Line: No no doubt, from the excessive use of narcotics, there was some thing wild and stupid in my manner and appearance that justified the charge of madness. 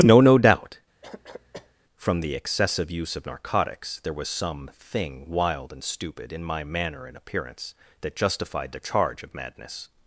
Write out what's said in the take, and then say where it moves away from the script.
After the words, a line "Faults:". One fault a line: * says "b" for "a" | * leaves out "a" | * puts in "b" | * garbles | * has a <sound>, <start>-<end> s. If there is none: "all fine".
No no doubt, from the excessive use of narcotics, there was some thing wild and stupid in my manner and appearance that justified the charge of madness.
Faults:
* has a cough, 1.0-1.7 s